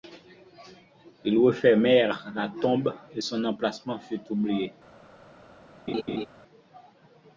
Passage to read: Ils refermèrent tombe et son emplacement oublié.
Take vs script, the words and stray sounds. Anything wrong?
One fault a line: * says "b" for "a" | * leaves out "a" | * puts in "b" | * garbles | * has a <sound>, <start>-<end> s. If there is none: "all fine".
* puts in "la"
* puts in "fut"
* has a laugh, 5.9-6.3 s